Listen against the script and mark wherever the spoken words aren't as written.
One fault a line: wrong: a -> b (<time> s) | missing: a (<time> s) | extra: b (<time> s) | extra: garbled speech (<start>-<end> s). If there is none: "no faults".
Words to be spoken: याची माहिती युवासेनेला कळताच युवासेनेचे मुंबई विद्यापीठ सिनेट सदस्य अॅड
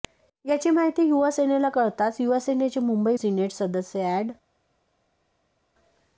missing: विद्यापीठ (3.2 s)